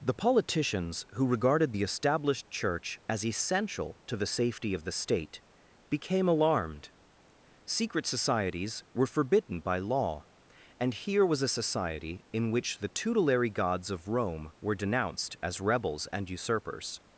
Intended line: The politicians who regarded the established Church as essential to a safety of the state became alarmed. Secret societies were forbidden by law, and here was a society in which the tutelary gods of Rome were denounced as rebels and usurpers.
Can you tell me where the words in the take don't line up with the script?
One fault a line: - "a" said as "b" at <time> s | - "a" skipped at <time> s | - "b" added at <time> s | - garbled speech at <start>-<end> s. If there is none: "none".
- "a" said as "the" at 4.2 s